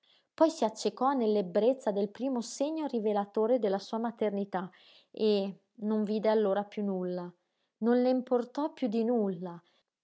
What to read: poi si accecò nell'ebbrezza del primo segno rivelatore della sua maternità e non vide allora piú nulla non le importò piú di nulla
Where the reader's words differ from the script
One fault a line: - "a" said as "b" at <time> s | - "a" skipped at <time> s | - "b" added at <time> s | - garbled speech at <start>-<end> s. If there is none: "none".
none